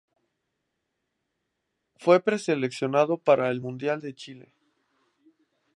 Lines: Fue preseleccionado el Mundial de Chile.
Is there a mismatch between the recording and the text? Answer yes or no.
yes